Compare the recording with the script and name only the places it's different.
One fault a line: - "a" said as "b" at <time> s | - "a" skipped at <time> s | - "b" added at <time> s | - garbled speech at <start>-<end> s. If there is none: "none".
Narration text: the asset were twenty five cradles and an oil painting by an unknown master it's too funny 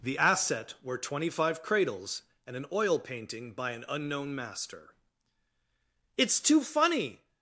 none